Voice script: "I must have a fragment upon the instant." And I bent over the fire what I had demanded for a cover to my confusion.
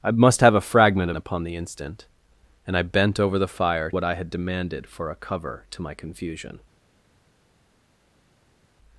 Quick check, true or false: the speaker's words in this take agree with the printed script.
true